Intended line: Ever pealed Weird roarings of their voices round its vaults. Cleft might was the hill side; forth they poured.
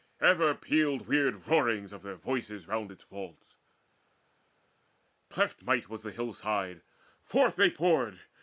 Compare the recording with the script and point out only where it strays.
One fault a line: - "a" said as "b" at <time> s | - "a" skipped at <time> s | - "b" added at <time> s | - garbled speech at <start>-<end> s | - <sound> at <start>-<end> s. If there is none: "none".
none